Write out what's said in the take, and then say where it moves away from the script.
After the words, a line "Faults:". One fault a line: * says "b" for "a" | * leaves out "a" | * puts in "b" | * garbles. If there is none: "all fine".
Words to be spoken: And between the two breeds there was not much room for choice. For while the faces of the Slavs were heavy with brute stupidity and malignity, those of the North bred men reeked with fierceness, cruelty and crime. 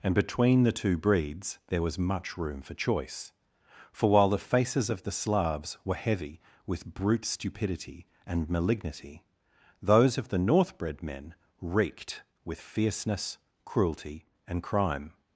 And between the two breeds there was much room for choice. For while the faces of the Slavs were heavy with brute stupidity and malignity, those of the North bred men reeked with fierceness, cruelty and crime.
Faults:
* leaves out "not"